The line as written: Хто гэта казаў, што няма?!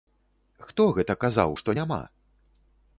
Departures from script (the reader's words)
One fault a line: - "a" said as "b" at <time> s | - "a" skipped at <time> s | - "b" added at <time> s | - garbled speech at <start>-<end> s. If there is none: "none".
none